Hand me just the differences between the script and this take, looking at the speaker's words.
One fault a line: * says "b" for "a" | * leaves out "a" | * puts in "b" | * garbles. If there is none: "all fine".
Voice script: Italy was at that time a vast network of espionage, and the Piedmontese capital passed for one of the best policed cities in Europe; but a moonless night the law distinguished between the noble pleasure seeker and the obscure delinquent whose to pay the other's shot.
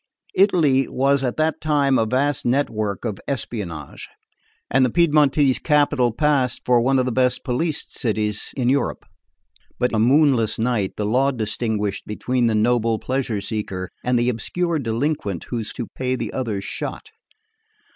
all fine